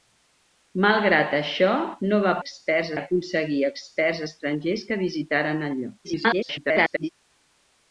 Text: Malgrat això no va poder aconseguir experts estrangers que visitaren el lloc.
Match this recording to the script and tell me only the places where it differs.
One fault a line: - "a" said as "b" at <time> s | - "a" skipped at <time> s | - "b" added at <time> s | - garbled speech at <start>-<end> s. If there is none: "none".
- "poder" said as "experts" at 2.4 s
- garbled speech at 6.0-7.1 s